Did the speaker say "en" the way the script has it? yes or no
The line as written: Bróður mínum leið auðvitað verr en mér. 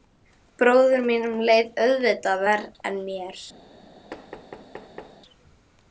yes